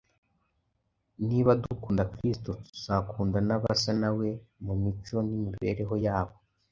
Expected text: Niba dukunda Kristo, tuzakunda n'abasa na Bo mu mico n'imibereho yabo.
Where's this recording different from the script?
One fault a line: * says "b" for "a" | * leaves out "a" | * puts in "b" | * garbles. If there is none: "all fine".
* says "We" for "Bo"